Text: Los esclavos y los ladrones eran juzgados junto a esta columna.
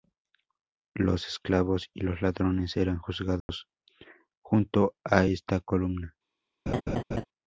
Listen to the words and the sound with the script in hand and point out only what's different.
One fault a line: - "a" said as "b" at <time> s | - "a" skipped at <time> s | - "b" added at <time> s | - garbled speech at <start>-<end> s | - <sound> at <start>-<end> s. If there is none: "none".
- dropout at 3.4-3.5 s
- laugh at 6.7-7.3 s